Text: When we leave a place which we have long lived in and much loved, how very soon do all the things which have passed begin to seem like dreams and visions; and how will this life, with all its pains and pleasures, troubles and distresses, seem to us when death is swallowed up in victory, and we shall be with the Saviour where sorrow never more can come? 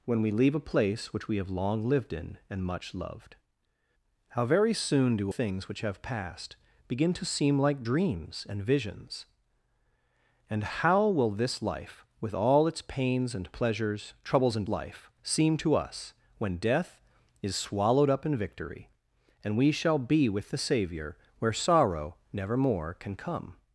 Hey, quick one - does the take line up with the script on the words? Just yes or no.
no